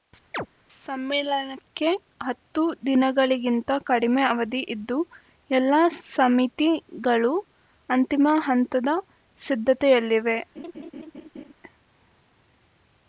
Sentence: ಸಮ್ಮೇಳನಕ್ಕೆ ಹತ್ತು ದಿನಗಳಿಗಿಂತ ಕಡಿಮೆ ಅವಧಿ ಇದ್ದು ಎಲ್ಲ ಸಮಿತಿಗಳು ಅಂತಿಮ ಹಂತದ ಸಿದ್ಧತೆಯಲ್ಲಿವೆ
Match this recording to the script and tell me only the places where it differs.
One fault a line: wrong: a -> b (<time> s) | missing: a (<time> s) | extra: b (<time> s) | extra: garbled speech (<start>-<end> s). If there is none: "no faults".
no faults